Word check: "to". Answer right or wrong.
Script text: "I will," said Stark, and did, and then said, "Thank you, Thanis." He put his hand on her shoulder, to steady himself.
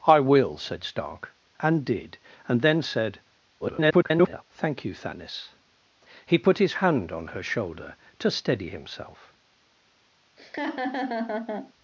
right